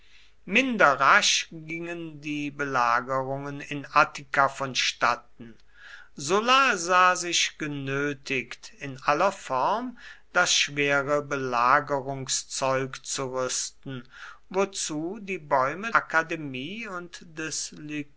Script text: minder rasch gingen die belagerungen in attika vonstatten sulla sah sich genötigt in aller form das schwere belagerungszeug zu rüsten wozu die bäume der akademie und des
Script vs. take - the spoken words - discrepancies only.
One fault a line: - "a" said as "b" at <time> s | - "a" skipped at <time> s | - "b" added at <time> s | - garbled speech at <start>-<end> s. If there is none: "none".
- "der" skipped at 15.9 s